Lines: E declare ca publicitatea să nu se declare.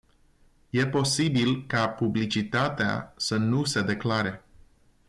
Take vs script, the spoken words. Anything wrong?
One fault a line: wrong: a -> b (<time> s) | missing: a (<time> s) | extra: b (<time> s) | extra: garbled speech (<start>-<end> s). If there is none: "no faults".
wrong: declare -> posibil (0.9 s)